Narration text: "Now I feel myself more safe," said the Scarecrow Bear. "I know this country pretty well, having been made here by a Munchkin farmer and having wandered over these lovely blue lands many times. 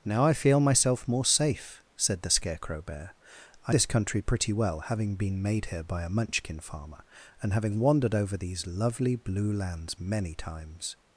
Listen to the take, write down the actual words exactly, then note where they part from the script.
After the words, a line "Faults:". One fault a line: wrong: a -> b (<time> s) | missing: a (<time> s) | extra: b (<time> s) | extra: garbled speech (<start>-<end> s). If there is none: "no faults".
"Now I feel myself more safe," said the Scarecrow Bear. "I this country pretty well, having been made here by a Munchkin farmer and having wandered over these lovely blue lands many times.
Faults:
missing: know (3.8 s)